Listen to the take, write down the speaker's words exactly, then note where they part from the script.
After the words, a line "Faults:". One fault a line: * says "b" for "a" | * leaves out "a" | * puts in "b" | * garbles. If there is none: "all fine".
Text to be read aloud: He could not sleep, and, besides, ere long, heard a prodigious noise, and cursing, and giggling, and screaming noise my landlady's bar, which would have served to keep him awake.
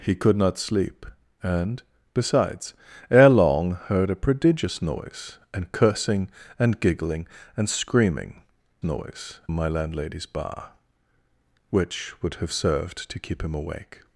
He could not sleep, and, besides, ere long, heard a prodigious noise, and cursing, and giggling, and screaming noise my landlady's bar, which would have served to keep him awake.
Faults:
all fine